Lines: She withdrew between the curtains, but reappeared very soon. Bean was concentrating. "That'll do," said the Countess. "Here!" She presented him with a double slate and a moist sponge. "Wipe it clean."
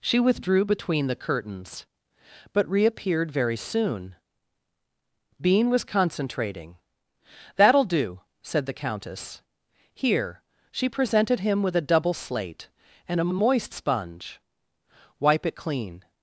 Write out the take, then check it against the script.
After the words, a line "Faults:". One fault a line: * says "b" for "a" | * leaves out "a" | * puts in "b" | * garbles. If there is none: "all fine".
She withdrew between the curtains, but reappeared very soon. Bean was concentrating. "That'll do," said the Countess. "Here!" She presented him with a double slate and a a moist sponge. "Wipe it clean."
Faults:
* puts in "a"